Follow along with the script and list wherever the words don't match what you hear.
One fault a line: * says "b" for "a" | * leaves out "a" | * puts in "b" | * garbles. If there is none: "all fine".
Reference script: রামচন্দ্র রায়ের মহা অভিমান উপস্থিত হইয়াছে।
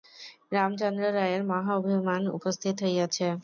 all fine